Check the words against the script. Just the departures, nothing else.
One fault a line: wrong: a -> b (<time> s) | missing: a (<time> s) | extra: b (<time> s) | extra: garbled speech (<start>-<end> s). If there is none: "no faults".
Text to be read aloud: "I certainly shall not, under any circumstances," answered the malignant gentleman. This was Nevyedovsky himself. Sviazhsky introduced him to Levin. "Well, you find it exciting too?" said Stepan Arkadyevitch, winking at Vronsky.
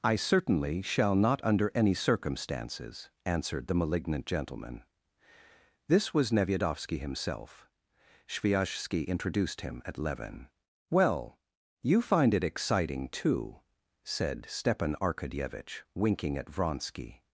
wrong: to -> at (9.8 s)